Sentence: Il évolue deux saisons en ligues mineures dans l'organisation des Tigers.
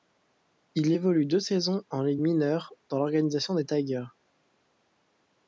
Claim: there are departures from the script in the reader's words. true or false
false